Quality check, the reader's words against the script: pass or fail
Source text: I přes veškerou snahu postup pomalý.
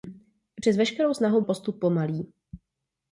pass